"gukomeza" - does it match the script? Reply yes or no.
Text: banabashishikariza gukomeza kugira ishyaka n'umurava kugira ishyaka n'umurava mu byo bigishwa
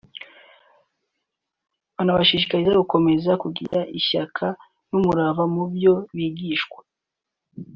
yes